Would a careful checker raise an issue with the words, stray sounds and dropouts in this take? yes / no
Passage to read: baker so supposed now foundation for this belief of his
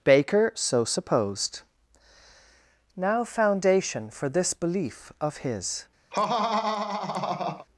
yes